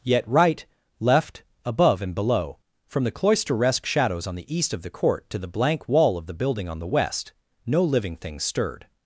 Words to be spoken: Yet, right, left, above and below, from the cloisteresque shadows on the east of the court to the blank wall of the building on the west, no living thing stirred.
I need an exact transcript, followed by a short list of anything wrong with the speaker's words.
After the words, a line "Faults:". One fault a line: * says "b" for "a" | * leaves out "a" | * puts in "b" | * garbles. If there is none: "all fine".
Yet, right, left, above and below, from the cloisteresque shadows on the east of the court to the blank wall of the building on the west, no living thing stirred.
Faults:
all fine